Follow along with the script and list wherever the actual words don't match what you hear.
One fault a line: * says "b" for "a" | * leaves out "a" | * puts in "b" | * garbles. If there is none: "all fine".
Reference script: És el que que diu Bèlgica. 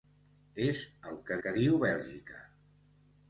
all fine